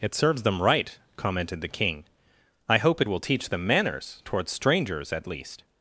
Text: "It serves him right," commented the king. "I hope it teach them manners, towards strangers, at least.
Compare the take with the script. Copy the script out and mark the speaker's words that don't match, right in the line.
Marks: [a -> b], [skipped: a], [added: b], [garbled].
"It serves [him -> them] right," commented the king. "I hope it [added: will] teach them manners, towards strangers, at least.